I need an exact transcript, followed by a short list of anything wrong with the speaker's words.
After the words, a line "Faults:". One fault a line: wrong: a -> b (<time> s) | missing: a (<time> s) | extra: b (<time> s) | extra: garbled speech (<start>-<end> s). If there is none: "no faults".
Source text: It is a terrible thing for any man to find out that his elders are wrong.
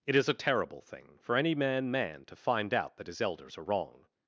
It is a terrible thing for any man man to find out that his elders are wrong.
Faults:
extra: man (1.9 s)